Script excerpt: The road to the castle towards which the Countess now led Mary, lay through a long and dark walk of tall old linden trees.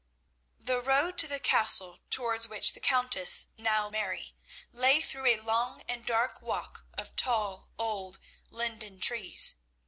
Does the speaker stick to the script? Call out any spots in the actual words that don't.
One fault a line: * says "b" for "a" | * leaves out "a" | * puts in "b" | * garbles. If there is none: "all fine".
* leaves out "led"